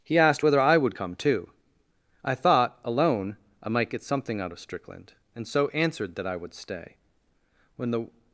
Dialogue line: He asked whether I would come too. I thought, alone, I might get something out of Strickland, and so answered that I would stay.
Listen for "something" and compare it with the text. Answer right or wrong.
right